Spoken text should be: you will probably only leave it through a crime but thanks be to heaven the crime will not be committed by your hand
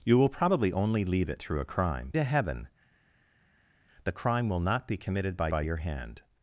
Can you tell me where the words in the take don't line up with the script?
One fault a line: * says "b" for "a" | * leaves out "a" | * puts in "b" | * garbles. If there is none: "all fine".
* leaves out "but thanks be"
* puts in "by"